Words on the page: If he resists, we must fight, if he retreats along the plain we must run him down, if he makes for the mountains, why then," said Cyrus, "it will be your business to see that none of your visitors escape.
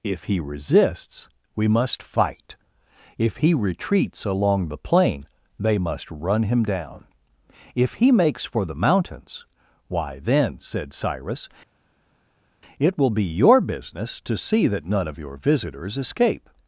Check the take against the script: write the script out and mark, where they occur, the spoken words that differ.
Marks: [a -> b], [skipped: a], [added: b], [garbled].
If he resists, we must fight, if he retreats along the plain [we -> they] must run him down, if he makes for the mountains, why then," said Cyrus, "it will be your business to see that none of your visitors escape.